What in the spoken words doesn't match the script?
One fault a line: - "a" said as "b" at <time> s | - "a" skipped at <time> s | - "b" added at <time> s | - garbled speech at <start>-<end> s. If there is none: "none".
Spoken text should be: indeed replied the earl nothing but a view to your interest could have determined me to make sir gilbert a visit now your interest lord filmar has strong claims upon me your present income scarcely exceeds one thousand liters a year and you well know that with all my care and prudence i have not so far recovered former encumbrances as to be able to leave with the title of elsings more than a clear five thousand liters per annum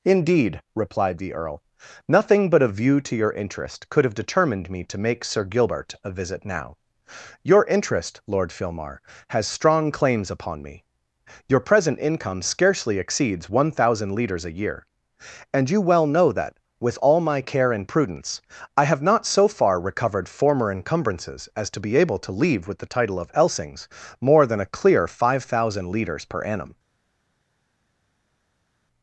none